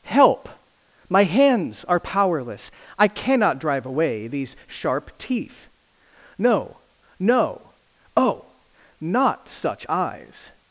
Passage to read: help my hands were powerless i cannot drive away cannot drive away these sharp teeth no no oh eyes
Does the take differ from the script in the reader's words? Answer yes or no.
yes